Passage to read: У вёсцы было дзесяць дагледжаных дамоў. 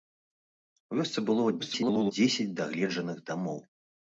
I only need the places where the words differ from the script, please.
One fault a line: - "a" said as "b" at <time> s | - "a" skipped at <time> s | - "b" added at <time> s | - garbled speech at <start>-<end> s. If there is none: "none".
- garbled speech at 1.6-2.1 s